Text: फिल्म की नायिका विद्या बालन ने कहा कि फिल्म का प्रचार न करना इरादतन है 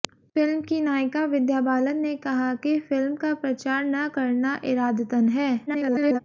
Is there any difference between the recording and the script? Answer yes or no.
yes